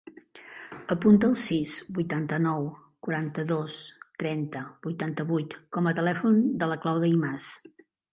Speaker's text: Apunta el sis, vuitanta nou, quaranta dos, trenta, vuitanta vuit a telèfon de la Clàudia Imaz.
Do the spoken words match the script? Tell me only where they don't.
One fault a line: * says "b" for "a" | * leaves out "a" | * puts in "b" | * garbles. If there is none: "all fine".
* puts in "com"